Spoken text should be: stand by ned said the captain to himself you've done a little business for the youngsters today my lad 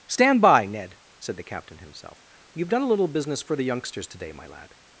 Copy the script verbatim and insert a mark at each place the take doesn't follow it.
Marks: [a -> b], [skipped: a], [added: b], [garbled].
stand by ned said the captain [skipped: to] himself you've done a little business for the youngsters today my lad